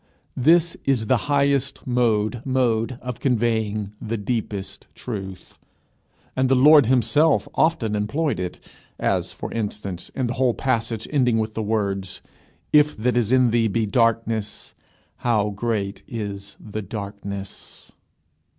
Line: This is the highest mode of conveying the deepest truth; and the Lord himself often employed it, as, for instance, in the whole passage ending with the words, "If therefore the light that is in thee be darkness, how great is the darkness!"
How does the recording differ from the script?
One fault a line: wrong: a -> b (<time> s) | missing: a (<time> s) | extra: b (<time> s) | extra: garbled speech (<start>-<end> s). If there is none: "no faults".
extra: mode (2.4 s)
missing: therefore the light (13.0 s)